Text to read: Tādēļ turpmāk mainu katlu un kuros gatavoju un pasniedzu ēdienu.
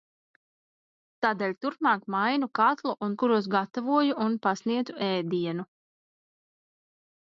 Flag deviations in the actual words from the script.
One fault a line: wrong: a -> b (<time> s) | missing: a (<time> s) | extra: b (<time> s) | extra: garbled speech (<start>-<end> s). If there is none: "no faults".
no faults